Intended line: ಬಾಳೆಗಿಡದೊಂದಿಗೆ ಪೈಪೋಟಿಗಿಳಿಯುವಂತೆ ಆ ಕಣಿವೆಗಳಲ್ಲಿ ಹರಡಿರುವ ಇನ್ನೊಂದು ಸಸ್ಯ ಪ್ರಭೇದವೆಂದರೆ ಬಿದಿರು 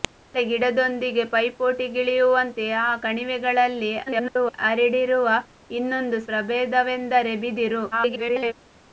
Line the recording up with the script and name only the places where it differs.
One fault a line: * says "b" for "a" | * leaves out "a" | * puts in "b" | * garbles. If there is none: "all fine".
* garbles
* leaves out "ಸಸ್ಯ"
* garbles